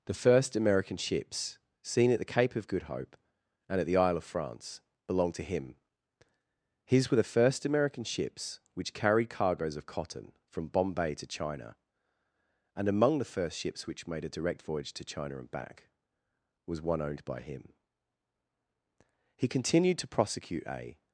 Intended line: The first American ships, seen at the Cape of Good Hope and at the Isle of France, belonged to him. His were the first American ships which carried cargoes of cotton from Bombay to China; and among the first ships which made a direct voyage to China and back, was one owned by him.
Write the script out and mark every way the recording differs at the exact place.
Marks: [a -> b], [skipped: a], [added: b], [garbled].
The first American ships, seen at the Cape of Good Hope and at the Isle of France, belonged to him. His were the first American ships which carried cargoes of cotton from Bombay to China; and among the first ships which made a direct voyage to China and back, was one owned by him. [added: He continued to prosecute a]